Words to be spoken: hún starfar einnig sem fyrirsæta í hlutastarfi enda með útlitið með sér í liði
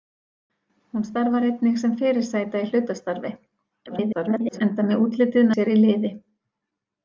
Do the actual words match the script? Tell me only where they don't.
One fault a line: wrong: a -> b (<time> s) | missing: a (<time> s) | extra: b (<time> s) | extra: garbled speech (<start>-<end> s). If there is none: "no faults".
extra: garbled speech (3.9-4.6 s)
missing: með (5.5 s)